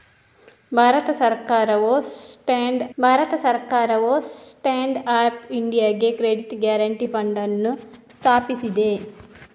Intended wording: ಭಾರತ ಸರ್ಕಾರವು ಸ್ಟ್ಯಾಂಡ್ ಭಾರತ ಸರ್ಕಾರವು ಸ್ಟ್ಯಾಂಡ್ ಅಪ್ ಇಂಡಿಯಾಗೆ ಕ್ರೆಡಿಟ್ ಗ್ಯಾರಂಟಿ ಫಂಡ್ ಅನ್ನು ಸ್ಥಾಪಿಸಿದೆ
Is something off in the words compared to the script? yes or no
no